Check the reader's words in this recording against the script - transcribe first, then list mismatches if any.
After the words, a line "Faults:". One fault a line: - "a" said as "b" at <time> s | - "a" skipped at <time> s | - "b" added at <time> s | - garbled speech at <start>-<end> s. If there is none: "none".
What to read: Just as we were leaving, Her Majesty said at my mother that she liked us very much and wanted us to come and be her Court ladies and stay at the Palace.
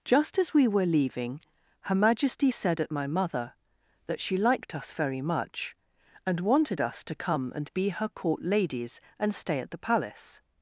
Just as we were leaving, Her Majesty said at my mother that she liked us very much and wanted us to come and be her Court ladies and stay at the Palace.
Faults:
none